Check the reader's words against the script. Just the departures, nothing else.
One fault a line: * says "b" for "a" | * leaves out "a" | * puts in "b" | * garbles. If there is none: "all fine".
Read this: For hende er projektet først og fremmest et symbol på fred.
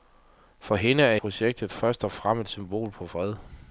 all fine